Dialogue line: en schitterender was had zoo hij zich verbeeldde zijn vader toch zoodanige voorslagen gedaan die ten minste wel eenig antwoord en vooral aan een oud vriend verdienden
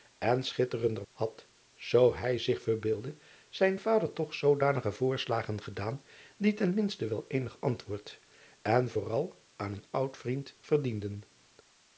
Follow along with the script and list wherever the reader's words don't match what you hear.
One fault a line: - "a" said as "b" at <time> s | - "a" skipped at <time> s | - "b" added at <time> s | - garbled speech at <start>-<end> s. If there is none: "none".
- "was" skipped at 1.1 s